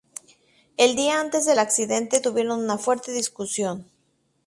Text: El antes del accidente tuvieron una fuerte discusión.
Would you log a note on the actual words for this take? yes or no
yes